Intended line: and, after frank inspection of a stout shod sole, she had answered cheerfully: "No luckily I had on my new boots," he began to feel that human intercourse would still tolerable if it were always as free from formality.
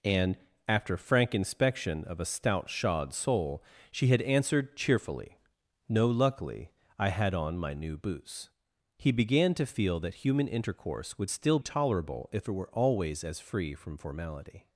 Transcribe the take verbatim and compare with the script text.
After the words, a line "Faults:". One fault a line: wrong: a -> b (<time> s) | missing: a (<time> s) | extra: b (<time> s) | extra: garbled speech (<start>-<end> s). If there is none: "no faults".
and, after frank inspection of a stout shod sole, she had answered cheerfully: "No luckily I had on my new boots," he began to feel that human intercourse would still tolerable if it were always as free from formality.
Faults:
no faults